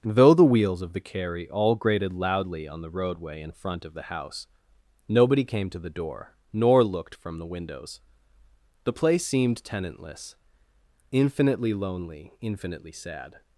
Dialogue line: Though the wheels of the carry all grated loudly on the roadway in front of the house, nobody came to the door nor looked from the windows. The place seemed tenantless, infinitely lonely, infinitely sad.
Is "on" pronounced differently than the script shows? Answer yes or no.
no